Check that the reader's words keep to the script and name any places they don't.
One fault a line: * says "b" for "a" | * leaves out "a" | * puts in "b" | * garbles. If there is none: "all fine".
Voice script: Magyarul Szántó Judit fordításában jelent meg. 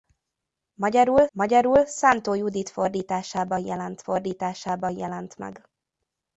* puts in "magyarul"
* puts in "fordításában jelent"